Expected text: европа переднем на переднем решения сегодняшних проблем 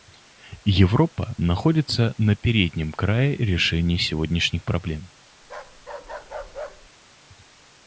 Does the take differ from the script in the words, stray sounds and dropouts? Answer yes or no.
yes